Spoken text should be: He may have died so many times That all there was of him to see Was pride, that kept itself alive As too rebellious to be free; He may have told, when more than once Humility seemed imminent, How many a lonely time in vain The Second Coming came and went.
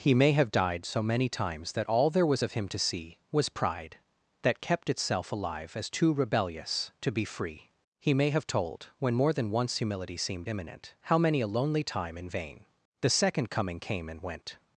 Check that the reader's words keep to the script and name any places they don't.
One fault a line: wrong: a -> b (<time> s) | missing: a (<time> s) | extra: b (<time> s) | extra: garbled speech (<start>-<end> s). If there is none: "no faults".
no faults